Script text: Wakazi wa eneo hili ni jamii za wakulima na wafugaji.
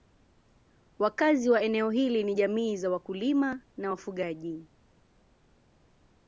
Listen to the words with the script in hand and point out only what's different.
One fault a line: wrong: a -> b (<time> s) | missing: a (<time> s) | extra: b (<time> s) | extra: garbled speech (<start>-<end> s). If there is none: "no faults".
no faults